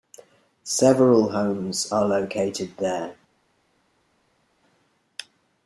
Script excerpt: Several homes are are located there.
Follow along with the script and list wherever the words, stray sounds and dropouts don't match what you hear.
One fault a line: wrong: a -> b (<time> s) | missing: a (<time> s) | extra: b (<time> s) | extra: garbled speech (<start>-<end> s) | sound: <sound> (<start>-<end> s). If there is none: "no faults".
missing: are (2.1 s)